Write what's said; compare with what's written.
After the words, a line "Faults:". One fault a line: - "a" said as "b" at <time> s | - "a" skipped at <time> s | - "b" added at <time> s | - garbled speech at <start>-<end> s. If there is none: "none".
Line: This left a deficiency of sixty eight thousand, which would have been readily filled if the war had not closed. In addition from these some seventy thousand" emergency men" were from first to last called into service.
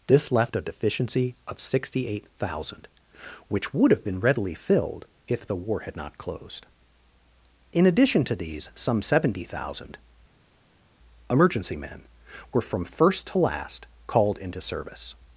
This left a deficiency of sixty eight thousand, which would have been readily filled if the war had not closed. In addition to these some seventy thousand" emergency men" were from first to last called into service.
Faults:
- "from" said as "to" at 8.2 s